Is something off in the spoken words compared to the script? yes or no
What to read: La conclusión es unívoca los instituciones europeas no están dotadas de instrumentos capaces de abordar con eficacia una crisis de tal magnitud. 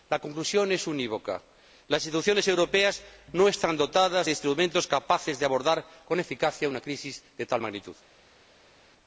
yes